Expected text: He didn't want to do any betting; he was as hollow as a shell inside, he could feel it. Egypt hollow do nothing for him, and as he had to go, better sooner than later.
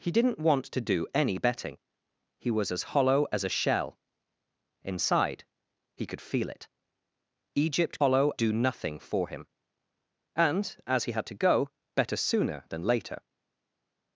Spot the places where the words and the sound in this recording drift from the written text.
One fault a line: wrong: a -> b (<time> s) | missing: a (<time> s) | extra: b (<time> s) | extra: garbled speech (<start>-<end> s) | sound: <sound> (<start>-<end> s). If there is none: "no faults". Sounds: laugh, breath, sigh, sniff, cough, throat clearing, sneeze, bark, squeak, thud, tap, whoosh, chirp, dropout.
no faults